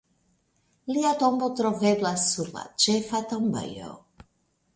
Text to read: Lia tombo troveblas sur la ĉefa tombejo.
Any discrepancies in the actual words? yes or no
no